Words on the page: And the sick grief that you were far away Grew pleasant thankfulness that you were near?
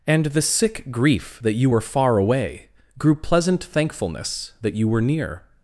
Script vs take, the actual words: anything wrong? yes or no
no